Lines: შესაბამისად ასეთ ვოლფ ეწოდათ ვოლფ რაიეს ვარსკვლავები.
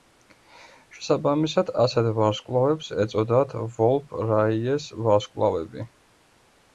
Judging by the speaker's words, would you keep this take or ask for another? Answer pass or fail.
fail